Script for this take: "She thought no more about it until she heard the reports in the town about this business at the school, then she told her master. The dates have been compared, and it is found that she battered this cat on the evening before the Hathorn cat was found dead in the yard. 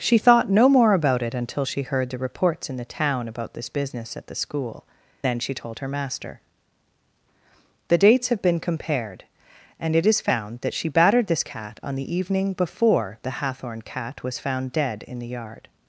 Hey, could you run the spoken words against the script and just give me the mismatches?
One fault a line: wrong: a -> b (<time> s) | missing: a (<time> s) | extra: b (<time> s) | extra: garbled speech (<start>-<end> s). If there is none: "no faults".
no faults